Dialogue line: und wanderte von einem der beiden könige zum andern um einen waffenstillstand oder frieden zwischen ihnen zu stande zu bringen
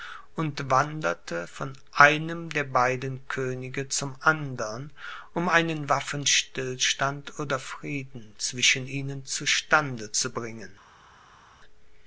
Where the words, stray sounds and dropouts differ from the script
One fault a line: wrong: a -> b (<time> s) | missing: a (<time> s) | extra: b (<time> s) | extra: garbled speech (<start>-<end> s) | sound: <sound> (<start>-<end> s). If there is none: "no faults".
no faults